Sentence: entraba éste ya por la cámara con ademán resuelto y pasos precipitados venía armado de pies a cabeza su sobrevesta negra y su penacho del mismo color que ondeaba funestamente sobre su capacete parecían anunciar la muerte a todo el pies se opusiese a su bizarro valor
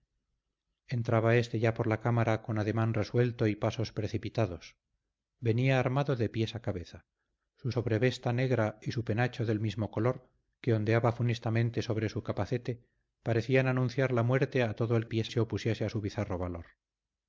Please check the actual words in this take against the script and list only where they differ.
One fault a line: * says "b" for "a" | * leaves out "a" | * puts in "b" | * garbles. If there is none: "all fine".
all fine